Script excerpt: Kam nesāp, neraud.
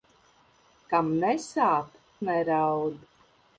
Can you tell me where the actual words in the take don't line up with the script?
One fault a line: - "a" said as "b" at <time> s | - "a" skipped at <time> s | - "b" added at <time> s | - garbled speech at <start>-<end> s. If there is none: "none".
none